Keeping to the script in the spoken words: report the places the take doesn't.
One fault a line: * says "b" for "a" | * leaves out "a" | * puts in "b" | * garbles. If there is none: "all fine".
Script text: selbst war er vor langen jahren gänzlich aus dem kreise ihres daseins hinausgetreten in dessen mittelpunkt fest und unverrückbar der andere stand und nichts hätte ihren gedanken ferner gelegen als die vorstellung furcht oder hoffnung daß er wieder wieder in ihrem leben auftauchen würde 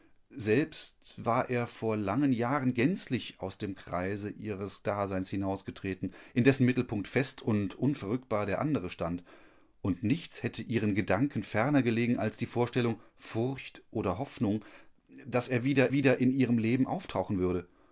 all fine